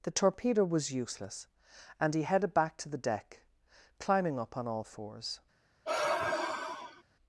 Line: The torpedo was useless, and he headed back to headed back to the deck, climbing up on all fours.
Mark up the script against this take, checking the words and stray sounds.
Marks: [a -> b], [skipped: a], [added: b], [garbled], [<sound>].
The torpedo was useless, and he headed back to [skipped: headed back to] the deck, climbing up on all fours. [sigh]